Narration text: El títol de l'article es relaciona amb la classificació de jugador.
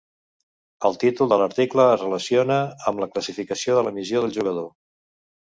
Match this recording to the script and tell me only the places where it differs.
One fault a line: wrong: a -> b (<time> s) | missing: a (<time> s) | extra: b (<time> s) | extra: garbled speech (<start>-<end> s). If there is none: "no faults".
extra: la missió del (3.9 s)